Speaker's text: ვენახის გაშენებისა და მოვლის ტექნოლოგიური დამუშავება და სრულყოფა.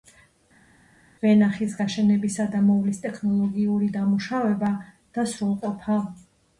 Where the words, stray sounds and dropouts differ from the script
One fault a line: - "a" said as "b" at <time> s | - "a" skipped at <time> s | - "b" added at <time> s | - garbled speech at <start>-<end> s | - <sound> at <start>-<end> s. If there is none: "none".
none